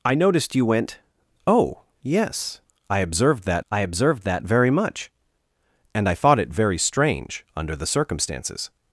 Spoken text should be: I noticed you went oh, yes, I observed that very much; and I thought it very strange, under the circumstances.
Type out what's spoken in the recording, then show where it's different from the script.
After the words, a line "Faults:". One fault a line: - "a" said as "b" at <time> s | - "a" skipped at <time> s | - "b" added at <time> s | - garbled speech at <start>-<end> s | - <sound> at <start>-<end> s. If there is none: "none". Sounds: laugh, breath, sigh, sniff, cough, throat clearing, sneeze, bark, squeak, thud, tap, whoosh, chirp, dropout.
I noticed you went oh, yes, I observed that I observed that very much; and I thought it very strange, under the circumstances.
Faults:
- "I observed that" added at 3.7 s